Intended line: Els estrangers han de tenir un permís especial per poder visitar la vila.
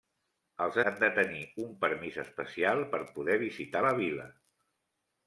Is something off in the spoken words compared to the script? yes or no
yes